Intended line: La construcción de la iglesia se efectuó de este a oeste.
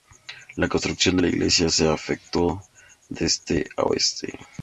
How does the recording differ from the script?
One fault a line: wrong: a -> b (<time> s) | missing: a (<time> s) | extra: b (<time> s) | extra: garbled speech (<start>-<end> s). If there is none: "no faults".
no faults